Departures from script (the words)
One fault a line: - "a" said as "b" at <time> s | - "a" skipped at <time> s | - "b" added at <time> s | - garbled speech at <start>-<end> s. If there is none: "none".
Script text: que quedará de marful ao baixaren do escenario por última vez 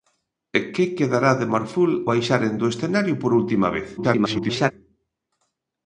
- "ao" skipped at 1.9 s
- garbled speech at 4.0-4.7 s